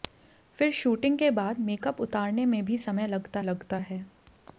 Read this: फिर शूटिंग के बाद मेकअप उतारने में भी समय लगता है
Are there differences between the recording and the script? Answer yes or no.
yes